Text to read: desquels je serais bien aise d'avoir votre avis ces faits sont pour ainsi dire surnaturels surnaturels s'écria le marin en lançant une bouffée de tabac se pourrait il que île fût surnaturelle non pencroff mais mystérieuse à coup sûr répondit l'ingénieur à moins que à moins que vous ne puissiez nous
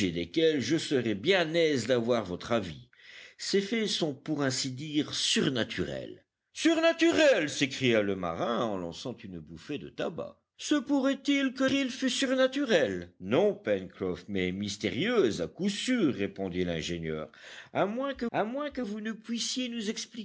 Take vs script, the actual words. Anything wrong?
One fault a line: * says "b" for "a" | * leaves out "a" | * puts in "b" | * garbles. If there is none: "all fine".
all fine